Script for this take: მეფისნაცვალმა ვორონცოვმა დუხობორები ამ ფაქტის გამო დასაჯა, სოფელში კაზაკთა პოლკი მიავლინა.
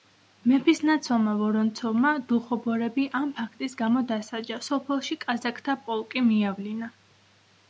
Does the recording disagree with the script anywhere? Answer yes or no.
no